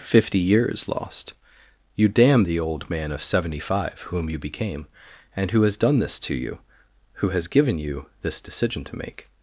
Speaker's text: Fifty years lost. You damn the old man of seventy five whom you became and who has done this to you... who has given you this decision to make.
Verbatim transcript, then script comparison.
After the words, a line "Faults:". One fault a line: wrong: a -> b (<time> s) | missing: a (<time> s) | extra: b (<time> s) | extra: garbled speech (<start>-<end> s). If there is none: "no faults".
Fifty years lost. You damn the old man of seventy five whom you became and who has done this to you... who has given you this decision to make.
Faults:
no faults